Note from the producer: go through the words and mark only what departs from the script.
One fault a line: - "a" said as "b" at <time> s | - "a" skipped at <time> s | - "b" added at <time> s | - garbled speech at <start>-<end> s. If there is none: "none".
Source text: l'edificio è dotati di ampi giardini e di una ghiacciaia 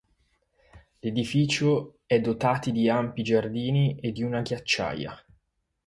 none